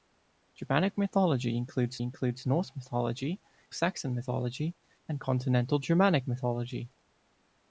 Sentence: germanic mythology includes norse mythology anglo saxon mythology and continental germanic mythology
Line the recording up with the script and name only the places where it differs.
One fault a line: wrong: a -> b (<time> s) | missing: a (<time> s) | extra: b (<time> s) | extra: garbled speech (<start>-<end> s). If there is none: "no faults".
extra: includes (2.0 s)
missing: anglo (3.4 s)